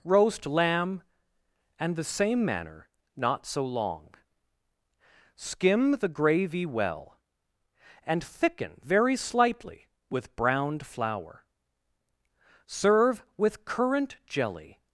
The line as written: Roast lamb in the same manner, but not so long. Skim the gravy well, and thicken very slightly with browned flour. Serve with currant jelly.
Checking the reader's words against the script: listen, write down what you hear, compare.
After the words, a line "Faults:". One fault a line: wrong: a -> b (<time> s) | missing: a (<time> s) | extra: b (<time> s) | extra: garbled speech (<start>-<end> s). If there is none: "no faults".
Roast lamb and the same manner, not so long. Skim the gravy well, and thicken very slightly with browned flour. Serve with currant jelly.
Faults:
wrong: in -> and (1.8 s)
missing: but (2.9 s)